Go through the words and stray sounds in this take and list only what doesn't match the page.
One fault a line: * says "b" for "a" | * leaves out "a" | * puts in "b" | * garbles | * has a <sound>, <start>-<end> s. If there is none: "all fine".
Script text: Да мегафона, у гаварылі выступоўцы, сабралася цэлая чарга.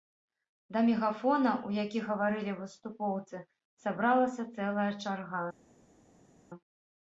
* puts in "які"